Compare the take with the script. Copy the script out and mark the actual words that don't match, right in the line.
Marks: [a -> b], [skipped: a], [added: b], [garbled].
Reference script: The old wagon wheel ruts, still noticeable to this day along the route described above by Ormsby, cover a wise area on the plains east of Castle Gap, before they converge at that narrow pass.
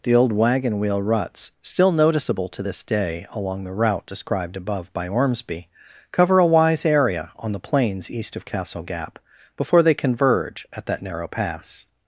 The old wagon wheel ruts, still noticeable to this day along the route described above by Ormsby, cover a wise area on the plains east of Castle Gap, before they converge at that narrow pass.